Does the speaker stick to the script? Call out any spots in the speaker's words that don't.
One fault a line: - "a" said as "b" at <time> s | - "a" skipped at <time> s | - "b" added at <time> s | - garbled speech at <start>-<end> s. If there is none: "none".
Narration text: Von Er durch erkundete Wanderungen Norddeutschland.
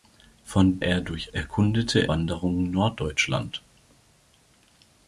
none